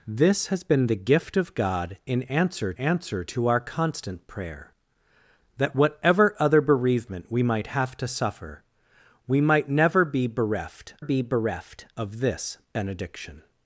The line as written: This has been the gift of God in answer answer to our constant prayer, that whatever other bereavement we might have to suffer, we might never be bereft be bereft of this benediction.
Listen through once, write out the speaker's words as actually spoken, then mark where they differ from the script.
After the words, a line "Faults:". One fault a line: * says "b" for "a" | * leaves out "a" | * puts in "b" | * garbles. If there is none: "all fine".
This has been the gift of God in answer answer to our constant prayer, that whatever other bereavement we might have to suffer, we might never be bereft be bereft of this benediction.
Faults:
all fine